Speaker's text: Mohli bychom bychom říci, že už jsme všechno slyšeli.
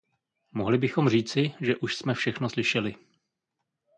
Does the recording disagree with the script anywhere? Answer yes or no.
yes